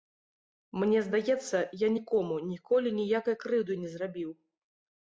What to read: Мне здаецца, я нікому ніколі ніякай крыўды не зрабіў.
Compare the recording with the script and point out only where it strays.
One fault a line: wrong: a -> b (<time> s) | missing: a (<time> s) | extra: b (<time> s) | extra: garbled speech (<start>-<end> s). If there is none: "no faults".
no faults